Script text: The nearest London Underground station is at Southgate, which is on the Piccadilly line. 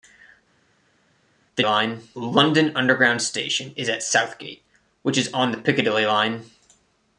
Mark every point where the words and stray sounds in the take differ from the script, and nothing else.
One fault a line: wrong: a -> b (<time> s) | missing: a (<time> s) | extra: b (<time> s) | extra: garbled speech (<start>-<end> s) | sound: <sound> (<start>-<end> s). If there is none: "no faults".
wrong: nearest -> line (1.6 s)